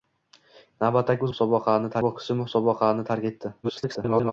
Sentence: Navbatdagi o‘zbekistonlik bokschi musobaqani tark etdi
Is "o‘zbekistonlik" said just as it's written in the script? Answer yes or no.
no